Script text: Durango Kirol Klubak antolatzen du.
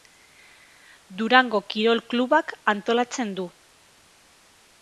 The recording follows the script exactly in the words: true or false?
true